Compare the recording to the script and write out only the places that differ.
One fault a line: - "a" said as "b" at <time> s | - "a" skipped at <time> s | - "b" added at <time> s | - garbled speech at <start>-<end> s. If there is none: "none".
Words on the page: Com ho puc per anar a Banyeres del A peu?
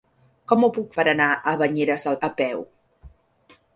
none